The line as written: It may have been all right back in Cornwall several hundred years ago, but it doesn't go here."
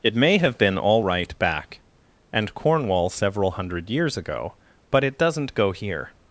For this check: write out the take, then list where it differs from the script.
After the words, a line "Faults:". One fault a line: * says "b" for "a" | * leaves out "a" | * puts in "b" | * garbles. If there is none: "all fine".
It may have been all right back and Cornwall several hundred years ago, but it doesn't go here."
Faults:
* says "and" for "in"